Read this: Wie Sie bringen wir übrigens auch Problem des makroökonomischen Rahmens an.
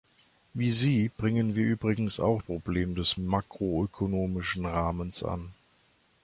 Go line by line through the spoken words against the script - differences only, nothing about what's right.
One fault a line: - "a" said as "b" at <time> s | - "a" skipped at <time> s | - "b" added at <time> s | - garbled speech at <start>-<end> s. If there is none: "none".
none